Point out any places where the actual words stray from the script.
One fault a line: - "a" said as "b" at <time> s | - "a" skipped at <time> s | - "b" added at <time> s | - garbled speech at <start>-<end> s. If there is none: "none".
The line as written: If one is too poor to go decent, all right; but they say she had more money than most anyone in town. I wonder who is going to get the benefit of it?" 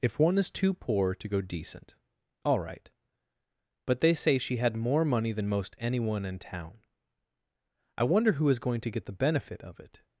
none